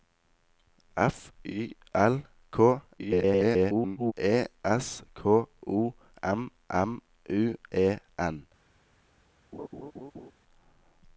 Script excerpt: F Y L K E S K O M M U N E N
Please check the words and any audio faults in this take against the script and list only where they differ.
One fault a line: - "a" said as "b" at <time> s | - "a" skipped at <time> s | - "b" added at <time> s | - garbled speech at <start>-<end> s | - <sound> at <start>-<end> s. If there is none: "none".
- garbled speech at 3.0-4.1 s
- "N" skipped at 7.5 s
- laugh at 9.5-10.3 s